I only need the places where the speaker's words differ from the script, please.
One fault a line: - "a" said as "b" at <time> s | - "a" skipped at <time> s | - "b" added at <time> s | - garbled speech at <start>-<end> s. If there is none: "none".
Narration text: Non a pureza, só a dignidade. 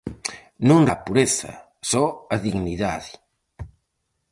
none